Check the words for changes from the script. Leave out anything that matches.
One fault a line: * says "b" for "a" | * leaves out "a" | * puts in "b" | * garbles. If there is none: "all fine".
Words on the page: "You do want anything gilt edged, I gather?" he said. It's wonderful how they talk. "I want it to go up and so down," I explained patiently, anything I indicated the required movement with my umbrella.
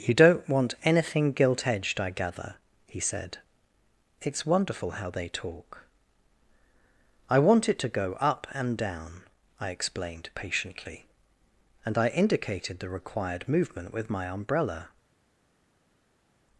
* says "don't" for "do"
* leaves out "so"
* says "and" for "anything"